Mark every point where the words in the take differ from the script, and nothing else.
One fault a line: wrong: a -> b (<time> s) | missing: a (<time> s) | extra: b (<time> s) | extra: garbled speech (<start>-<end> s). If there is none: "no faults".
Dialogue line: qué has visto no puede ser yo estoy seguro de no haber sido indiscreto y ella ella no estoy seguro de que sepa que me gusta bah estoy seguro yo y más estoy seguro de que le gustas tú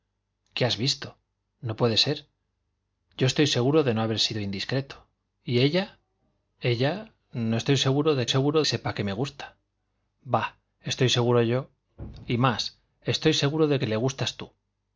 wrong: que -> seguro (8.3 s)